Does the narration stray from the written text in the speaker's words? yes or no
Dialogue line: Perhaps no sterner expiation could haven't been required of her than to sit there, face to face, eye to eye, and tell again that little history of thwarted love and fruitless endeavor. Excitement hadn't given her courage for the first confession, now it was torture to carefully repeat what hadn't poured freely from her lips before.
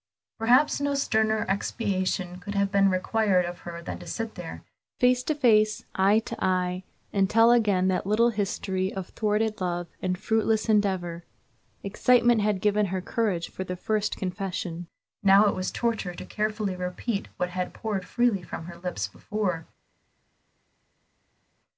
yes